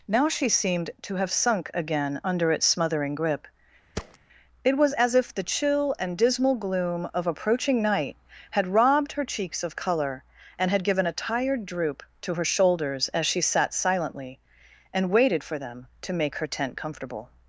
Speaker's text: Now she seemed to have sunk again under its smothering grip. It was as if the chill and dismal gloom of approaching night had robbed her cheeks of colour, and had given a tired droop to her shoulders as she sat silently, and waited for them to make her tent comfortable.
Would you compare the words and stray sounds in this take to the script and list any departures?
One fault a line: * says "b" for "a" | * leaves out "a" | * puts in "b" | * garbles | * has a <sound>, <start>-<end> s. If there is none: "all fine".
* has a thud, 4.0-4.2 s